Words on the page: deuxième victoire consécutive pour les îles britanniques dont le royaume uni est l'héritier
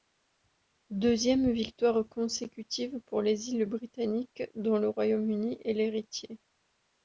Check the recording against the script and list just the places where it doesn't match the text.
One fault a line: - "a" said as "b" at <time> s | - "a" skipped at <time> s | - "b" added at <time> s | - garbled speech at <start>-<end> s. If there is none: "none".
none